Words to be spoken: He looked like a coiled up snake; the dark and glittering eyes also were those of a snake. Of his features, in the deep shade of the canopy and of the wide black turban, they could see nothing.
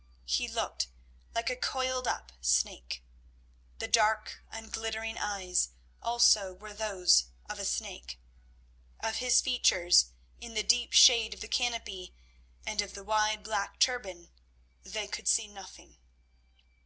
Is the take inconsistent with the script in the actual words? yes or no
no